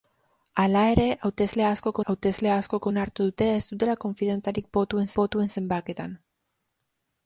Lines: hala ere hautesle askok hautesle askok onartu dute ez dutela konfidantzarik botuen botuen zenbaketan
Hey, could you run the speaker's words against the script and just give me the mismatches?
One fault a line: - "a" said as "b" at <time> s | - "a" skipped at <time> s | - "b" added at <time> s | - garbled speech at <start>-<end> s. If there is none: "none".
none